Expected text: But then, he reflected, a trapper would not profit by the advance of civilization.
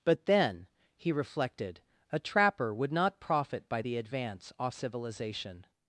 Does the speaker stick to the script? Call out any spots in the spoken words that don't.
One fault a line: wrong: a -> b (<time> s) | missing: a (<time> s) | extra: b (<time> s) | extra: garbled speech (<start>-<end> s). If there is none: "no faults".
wrong: of -> off (4.6 s)